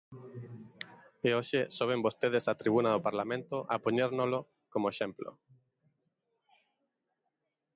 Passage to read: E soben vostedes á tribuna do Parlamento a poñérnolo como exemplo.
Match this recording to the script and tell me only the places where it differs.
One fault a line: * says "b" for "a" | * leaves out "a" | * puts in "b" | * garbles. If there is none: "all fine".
* puts in "hoxe"